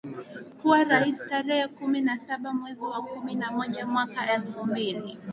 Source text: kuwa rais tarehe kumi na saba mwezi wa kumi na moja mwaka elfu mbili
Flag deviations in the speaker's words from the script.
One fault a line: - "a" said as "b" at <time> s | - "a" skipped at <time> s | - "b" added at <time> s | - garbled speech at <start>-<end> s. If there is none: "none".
none